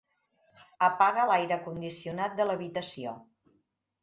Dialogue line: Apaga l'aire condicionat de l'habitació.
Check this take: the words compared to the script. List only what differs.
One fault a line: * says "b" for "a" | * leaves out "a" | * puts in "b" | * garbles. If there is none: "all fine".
all fine